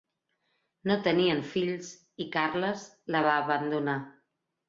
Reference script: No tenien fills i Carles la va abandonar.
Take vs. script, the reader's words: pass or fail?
pass